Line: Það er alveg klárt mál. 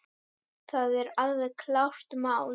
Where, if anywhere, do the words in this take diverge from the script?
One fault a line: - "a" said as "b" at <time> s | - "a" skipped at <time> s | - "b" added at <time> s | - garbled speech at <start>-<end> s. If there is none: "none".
none